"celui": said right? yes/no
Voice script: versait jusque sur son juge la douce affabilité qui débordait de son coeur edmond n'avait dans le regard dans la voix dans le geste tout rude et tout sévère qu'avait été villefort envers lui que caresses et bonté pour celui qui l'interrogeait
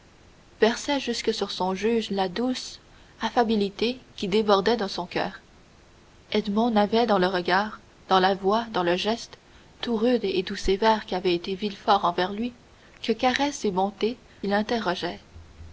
no